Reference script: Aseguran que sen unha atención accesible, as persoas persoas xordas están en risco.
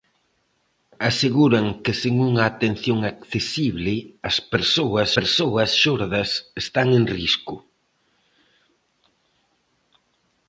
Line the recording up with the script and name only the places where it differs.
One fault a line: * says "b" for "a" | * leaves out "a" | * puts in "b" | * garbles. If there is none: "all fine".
all fine